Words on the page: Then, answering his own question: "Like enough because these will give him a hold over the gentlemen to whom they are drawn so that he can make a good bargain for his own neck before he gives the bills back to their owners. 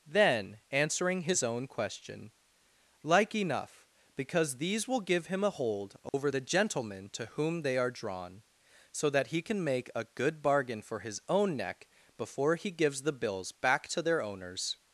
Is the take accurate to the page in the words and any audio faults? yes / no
no